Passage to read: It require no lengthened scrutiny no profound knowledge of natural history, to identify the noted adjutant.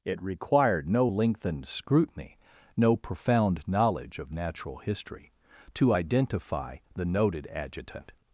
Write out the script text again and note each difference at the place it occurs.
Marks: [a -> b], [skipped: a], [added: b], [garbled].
It [require -> required] no lengthened scrutiny no profound knowledge of natural history, to identify the noted adjutant.